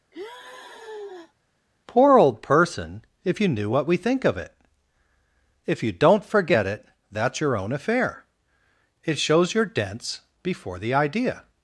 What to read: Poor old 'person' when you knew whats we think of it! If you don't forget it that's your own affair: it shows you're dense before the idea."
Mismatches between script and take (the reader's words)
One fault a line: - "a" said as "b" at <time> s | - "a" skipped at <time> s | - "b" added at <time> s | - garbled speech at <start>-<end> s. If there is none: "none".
- "when" said as "if" at 3.2 s
- "whats" said as "what" at 3.7 s